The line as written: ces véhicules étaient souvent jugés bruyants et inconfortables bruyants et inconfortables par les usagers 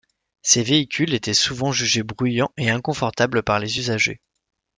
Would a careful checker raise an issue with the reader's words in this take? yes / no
yes